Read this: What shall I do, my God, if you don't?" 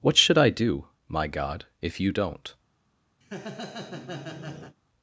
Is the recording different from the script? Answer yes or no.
yes